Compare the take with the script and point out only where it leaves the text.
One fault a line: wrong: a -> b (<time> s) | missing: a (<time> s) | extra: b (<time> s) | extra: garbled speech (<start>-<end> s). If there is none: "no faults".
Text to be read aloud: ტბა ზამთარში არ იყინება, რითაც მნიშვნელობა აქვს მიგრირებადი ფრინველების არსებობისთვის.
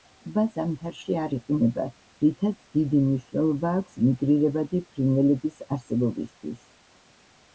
extra: დიდი (2.8 s)